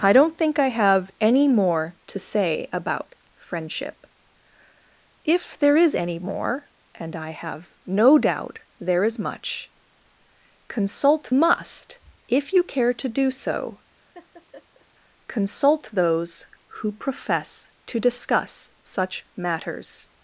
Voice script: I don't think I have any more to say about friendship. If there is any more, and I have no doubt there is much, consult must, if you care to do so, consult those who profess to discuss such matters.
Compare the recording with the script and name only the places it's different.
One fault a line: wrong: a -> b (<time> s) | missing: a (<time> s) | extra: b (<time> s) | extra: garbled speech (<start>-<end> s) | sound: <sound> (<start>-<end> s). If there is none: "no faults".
sound: laugh (14.1-14.9 s)